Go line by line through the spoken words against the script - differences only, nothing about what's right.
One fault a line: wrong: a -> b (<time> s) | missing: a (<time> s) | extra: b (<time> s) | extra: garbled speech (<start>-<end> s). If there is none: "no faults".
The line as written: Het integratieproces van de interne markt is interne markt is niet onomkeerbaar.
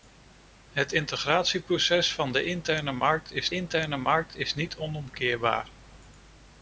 no faults